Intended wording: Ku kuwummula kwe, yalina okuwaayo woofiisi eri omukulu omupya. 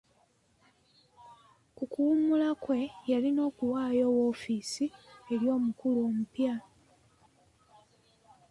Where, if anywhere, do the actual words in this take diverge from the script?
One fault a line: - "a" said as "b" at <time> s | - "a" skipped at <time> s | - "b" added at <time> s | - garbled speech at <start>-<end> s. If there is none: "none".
none